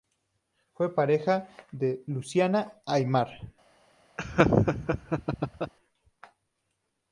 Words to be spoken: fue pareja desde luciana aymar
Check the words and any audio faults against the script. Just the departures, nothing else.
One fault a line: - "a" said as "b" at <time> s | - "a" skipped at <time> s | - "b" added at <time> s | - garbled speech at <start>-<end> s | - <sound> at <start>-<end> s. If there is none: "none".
- "desde" said as "de" at 1.7 s
- laugh at 4.2-5.7 s